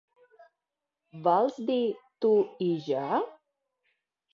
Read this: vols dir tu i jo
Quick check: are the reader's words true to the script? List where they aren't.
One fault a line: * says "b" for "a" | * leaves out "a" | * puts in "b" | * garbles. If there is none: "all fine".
all fine